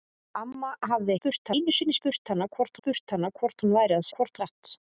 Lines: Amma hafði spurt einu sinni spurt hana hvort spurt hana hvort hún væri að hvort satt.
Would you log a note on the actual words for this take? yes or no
no